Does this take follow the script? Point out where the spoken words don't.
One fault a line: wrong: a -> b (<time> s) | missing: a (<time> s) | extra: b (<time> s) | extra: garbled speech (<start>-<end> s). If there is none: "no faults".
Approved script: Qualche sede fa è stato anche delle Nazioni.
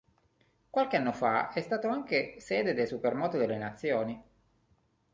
wrong: sede -> anno (1.0 s)
extra: sede del Supermoto (2.4 s)